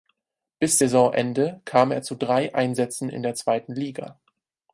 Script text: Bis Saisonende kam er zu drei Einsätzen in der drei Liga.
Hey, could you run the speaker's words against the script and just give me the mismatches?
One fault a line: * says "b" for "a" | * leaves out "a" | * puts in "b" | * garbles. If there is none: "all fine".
* says "zweiten" for "drei"